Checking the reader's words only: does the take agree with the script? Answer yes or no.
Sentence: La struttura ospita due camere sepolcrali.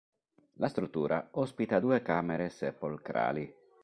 yes